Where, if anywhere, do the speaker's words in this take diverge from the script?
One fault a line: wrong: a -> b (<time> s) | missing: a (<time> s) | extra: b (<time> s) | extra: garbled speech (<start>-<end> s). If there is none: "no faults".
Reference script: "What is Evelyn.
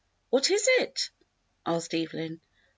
extra: it asked (0.8 s)